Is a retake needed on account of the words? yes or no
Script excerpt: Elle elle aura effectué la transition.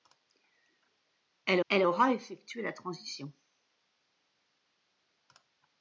no